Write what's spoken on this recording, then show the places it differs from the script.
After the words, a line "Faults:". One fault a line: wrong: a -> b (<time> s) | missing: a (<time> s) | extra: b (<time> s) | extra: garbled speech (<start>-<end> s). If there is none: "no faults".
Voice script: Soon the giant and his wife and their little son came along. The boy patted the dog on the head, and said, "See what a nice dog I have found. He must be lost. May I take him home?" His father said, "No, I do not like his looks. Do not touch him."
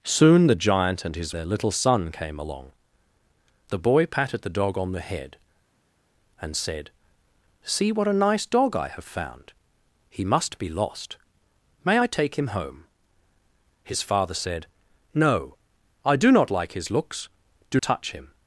Soon the giant and his their little son came along. The boy patted the dog on the head, and said, "See what a nice dog I have found. He must be lost. May I take him home?" His father said, "No, I do not like his looks. Do touch him."
Faults:
missing: wife and (1.4 s)
missing: not (17.8 s)